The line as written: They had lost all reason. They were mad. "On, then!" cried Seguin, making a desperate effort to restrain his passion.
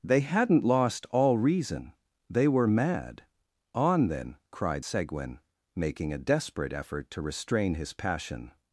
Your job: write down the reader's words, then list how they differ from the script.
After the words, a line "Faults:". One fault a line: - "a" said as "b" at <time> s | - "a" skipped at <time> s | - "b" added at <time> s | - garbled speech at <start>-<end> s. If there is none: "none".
They hadn't lost all reason. They were mad. "On, then!" cried Seguin, making a desperate effort to restrain his passion.
Faults:
- "had" said as "hadn't" at 0.2 s